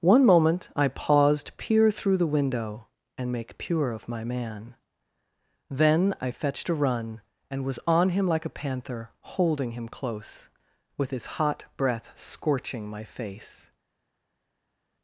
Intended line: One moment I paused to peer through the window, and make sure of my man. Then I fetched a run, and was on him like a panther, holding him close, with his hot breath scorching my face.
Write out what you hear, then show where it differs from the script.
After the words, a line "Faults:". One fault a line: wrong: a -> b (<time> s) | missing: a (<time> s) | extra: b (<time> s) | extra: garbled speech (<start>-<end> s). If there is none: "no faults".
One moment I paused peer through the window, and make pure of my man. Then I fetched a run, and was on him like a panther, holding him close, with his hot breath scorching my face.
Faults:
missing: to (1.6 s)
wrong: sure -> pure (3.6 s)